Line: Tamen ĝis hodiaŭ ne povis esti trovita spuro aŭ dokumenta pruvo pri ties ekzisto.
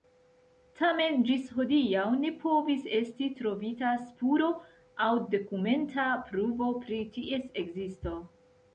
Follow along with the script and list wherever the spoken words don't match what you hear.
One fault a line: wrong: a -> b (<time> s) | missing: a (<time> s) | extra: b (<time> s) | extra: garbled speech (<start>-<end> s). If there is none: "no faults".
no faults